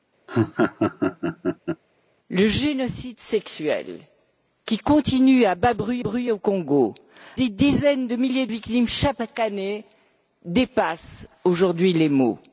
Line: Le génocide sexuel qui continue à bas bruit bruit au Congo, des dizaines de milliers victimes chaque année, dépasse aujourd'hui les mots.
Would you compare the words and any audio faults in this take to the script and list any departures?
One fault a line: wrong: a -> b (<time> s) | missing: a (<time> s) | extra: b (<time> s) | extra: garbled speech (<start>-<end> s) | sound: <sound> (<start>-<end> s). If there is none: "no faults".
sound: laugh (0.3-1.8 s)